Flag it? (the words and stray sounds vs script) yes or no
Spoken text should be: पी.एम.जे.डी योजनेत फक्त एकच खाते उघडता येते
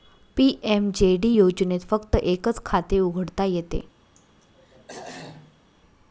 yes